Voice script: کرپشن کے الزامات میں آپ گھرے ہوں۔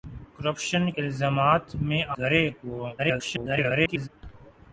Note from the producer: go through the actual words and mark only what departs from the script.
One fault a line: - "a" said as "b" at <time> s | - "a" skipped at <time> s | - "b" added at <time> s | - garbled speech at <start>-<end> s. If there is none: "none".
- "کے" skipped at 0.9 s
- "آپ" skipped at 2.0 s
- garbled speech at 3.0-4.1 s